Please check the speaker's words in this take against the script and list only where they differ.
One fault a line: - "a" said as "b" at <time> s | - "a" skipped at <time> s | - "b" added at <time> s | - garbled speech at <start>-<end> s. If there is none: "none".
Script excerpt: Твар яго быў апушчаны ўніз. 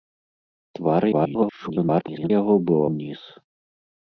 - garbled speech at 1.1-2.3 s
- "апушчаны" skipped at 2.8 s